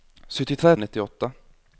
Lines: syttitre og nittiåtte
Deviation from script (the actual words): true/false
false